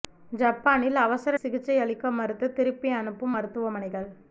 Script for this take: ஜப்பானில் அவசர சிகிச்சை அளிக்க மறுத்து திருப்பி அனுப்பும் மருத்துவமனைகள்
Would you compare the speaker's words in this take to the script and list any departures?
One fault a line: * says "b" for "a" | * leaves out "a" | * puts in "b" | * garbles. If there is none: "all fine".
all fine